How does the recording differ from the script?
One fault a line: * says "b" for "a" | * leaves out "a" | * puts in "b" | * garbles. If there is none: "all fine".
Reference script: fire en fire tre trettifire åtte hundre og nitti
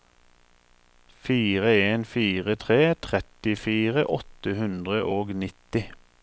all fine